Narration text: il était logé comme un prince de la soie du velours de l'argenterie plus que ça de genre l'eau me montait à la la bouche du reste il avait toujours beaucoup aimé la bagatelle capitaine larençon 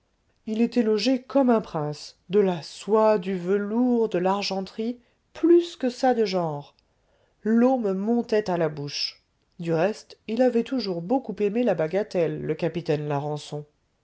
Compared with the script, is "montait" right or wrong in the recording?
right